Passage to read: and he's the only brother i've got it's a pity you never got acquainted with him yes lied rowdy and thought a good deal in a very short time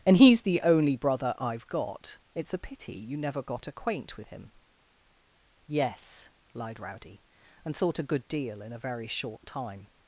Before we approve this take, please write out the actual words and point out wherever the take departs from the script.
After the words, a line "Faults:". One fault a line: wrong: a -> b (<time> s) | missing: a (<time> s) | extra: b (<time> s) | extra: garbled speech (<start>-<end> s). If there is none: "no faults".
and he's the only brother i've got it's a pity you never got acquaint with him yes lied rowdy and thought a good deal in a very short time
Faults:
wrong: acquainted -> acquaint (3.7 s)